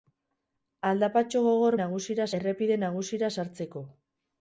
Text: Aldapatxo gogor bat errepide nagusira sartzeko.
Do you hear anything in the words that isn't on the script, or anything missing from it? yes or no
yes